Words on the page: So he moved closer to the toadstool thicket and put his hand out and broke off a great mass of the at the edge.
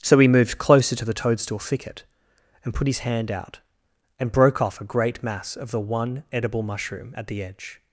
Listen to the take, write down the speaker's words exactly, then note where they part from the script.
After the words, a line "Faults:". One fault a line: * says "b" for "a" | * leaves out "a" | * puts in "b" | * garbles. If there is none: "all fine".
So he moved closer to the toadstool thicket and put his hand out and broke off a great mass of the one edible mushroom at the edge.
Faults:
* puts in "one edible mushroom"